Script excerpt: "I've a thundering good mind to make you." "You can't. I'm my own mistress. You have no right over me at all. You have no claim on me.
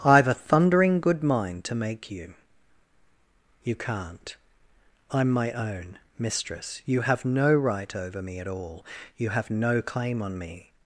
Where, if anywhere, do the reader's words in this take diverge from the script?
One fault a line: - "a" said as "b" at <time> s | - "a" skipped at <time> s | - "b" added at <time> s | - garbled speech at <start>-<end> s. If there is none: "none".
none